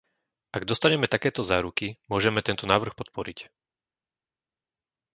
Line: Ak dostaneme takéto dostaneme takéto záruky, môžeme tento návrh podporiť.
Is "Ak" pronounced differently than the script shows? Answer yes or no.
no